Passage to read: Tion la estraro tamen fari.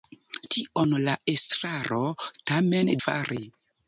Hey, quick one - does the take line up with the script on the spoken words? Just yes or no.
yes